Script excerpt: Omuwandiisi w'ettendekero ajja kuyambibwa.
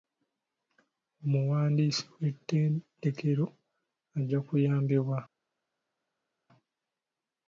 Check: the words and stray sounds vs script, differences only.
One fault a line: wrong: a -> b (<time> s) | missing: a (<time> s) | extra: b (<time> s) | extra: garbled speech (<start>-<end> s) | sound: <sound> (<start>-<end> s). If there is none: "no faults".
no faults